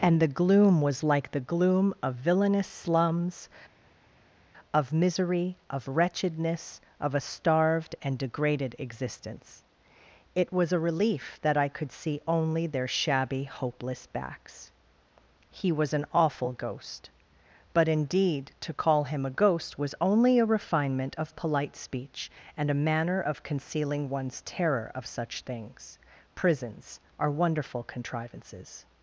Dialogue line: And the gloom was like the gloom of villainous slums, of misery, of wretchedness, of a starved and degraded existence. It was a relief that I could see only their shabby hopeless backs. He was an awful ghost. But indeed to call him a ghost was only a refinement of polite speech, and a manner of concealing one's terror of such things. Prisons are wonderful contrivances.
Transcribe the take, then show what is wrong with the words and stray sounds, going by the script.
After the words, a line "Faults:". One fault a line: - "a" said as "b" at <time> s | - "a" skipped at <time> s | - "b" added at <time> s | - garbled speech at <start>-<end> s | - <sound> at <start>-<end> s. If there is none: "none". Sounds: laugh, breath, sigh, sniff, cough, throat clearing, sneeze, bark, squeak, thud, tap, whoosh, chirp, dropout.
And the gloom was like the gloom of villainous slums, of misery, of wretchedness, of a starved and degraded existence. It was a relief that I could see only their shabby hopeless backs. He was an awful ghost. But indeed to call him a ghost was only a refinement of polite speech, and a manner of concealing one's terror of such things. Prisons are wonderful contrivances.
Faults:
none